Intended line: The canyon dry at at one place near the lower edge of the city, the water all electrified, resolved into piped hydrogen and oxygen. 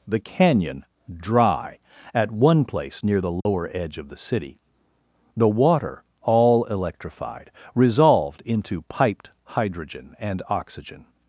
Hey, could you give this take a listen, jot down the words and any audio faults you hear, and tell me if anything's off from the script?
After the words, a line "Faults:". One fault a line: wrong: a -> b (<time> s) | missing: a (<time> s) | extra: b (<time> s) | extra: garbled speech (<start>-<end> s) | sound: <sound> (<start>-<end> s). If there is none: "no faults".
The canyon dry at one place near the lower edge of the city, the water all electrified, resolved into piped hydrogen and oxygen.
Faults:
missing: at (2.3 s)
sound: dropout (3.4-3.5 s)